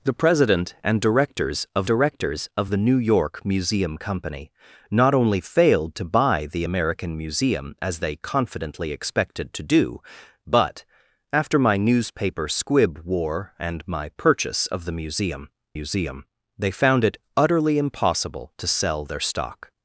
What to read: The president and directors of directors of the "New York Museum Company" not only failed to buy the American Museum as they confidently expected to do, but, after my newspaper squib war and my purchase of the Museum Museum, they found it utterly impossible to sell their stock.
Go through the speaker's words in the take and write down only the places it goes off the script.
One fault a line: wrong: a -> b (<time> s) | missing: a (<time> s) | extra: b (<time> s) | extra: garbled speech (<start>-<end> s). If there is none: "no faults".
no faults